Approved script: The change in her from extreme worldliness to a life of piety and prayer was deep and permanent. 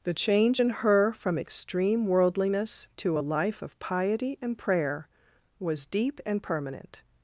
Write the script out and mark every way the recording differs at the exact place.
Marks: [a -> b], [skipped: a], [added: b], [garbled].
The change in her from extreme worldliness to a life of piety and prayer was deep and permanent.